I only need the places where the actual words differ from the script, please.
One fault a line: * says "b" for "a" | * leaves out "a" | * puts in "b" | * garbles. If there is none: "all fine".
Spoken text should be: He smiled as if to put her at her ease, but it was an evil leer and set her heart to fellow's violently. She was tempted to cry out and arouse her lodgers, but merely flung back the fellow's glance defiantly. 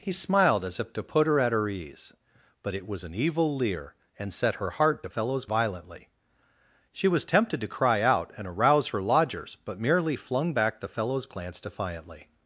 all fine